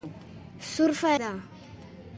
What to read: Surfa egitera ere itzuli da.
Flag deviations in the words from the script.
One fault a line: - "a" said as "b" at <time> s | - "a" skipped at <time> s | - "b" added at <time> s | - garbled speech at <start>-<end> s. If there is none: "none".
- "egitera ere itzuli" skipped at 1.1 s